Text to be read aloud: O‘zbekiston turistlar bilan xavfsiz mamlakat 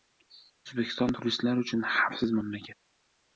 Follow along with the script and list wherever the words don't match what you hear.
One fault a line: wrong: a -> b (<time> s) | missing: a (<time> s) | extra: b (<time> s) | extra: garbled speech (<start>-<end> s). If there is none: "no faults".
wrong: bilan -> uchun (1.6 s)